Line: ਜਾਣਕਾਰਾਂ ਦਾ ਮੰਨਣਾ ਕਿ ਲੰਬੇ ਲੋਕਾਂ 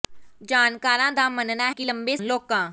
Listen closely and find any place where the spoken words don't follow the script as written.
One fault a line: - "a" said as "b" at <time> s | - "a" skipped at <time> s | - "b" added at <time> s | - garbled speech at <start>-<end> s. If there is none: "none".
none